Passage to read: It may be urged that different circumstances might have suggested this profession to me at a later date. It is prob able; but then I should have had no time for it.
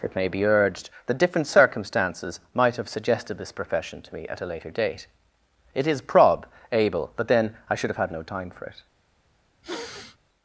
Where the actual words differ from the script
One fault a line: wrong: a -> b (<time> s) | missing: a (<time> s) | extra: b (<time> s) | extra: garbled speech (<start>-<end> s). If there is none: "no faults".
no faults